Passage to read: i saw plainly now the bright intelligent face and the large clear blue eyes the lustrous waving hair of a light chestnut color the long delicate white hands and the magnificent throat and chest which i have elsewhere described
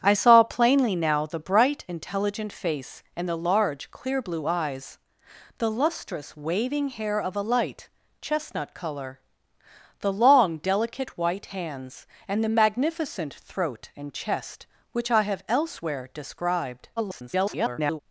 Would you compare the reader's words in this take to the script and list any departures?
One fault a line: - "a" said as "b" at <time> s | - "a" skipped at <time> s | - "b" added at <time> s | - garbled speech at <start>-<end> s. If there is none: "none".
- garbled speech at 17.0-18.0 s